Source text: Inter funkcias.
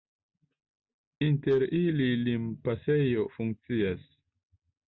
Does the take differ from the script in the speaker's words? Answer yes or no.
yes